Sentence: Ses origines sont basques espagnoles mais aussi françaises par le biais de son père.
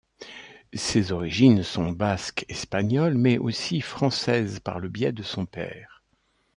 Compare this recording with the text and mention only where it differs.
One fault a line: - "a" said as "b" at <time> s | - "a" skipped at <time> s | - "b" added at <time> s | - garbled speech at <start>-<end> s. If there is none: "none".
none